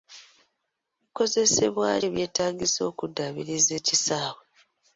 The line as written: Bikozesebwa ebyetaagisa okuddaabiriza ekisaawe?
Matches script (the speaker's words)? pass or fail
pass